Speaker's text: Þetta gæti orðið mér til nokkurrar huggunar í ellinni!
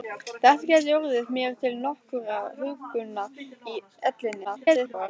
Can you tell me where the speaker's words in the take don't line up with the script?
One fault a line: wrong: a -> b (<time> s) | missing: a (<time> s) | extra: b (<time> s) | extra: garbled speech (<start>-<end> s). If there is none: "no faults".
extra: garbled speech (4.4-5.1 s)